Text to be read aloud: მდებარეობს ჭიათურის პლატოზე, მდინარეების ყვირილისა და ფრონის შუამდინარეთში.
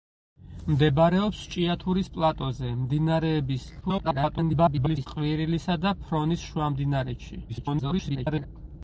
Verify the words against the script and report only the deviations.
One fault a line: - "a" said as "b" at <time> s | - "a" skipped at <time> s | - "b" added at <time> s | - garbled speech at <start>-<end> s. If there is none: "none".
- garbled speech at 3.8-5.1 s
- garbled speech at 7.5-8.5 s